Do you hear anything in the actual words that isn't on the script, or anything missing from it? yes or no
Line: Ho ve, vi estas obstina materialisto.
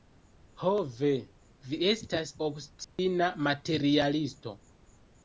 no